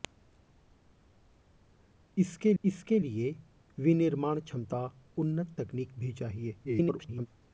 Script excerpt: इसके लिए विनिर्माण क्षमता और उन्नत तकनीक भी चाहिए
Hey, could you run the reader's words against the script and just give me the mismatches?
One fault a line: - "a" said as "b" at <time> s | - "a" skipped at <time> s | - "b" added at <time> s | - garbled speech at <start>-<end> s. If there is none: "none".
- "इसके" added at 2.6 s
- "और" skipped at 4.8 s
- garbled speech at 6.6-7.3 s